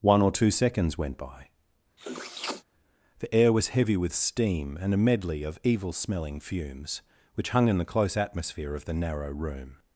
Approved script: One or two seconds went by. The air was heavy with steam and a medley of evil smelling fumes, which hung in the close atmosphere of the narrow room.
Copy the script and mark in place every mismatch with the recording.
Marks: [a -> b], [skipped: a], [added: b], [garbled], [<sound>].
One or two seconds went by. [sniff] The air was heavy with steam and a medley of evil smelling fumes, which hung in the close atmosphere of the narrow room.